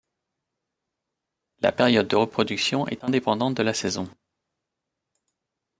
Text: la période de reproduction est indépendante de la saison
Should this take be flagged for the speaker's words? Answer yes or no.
no